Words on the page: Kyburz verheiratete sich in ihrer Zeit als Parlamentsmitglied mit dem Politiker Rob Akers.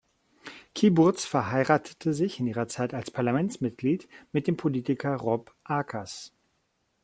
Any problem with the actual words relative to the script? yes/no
no